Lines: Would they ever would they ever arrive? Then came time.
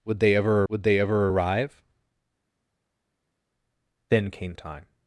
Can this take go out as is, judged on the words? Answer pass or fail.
pass